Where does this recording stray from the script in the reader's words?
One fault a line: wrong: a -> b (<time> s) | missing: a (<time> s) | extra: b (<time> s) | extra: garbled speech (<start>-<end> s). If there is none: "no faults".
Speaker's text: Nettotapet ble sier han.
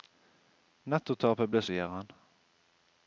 no faults